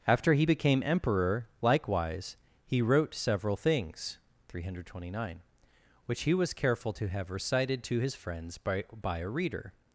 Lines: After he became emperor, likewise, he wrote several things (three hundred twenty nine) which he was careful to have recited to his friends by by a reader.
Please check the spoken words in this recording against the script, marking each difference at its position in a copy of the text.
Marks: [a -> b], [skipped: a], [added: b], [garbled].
After he became emperor, likewise, he wrote several things (three hundred twenty nine) which he was careful to have recited to his friends by by a reader.